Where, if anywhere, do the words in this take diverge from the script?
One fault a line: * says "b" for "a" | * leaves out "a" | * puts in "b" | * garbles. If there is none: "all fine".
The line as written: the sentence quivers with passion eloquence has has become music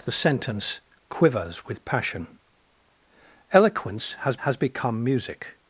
all fine